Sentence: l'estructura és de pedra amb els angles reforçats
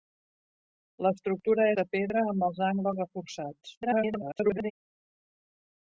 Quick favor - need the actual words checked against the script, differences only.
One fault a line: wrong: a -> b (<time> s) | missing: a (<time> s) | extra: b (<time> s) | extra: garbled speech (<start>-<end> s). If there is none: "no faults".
missing: és (1.7 s)
extra: garbled speech (3.8-4.7 s)